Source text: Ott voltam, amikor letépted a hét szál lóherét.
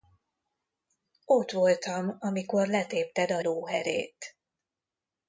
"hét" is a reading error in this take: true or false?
true